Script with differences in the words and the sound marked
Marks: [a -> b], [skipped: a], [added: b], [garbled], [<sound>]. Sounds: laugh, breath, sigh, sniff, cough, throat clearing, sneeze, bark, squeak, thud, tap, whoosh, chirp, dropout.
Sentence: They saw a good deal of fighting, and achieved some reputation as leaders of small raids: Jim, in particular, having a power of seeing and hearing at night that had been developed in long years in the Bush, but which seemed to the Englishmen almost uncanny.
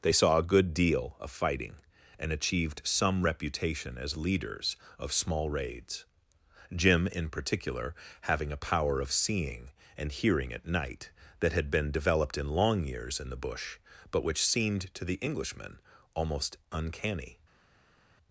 They saw a good deal of fighting, and achieved some reputation as leaders of small raids: Jim, in particular, having a power of seeing and hearing at night that had been developed in long years in the Bush, but which seemed to the Englishmen almost uncanny.